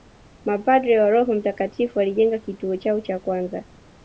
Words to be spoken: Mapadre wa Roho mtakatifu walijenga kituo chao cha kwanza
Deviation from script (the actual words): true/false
false